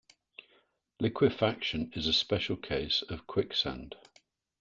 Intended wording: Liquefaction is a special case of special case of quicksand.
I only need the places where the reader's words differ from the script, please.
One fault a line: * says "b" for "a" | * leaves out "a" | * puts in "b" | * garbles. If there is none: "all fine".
* leaves out "special case of"